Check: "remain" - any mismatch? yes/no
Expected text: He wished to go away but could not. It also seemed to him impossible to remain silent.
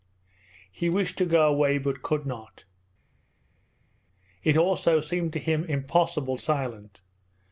yes